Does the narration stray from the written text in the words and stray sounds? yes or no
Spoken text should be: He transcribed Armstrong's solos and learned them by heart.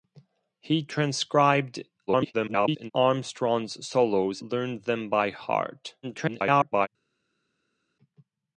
yes